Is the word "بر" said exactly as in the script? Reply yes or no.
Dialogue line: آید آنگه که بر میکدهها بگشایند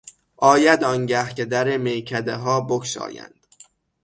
no